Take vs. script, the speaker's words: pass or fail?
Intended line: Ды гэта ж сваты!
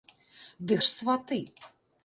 fail